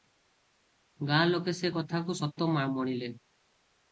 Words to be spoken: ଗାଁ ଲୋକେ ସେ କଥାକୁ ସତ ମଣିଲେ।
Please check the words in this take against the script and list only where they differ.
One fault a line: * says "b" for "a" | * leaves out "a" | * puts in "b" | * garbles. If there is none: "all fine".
all fine